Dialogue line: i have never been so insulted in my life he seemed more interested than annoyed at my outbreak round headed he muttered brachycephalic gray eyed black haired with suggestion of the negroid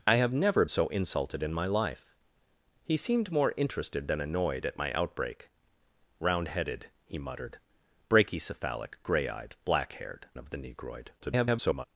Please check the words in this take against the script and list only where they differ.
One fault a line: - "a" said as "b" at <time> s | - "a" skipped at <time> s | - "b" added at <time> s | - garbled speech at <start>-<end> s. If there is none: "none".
- "been" skipped at 0.7 s
- "with suggestion" skipped at 10.3 s
- garbled speech at 11.2-11.9 s